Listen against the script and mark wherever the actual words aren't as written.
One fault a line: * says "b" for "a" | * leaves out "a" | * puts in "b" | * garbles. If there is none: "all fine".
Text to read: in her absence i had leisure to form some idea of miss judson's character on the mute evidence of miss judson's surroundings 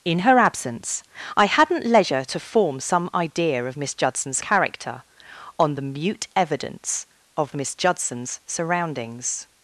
* says "hadn't" for "had"